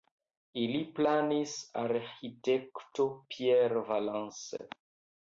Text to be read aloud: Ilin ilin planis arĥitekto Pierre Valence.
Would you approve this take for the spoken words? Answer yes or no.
no